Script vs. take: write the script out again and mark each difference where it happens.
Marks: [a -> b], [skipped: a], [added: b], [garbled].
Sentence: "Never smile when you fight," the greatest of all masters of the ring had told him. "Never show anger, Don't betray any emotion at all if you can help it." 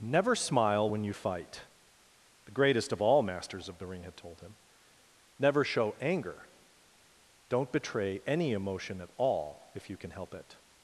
"Never smile when you fight," the greatest of all masters of the ring had told him. "Never show anger, Don't betray any emotion at all if you can help it."